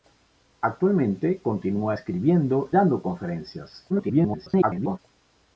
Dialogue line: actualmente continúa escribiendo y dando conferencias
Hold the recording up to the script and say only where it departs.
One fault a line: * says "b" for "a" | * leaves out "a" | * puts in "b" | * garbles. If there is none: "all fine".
* leaves out "y"
* garbles